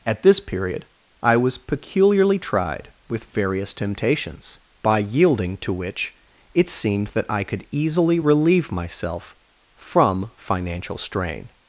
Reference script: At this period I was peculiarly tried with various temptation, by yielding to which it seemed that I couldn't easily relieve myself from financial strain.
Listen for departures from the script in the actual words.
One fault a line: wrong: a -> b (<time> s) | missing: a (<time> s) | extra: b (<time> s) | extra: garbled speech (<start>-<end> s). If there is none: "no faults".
wrong: temptation -> temptations (3.7 s)
wrong: couldn't -> could (7.4 s)